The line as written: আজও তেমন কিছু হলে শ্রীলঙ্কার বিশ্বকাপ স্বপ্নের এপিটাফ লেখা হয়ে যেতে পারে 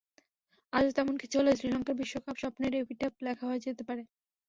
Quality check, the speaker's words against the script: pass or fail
pass